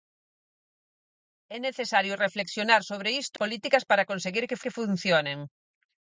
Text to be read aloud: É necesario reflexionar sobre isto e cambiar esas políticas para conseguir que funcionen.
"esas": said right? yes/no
no